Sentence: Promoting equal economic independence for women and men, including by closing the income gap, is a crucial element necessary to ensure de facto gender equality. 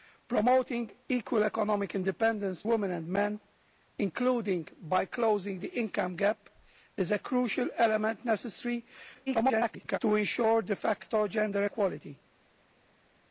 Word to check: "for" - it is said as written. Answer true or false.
false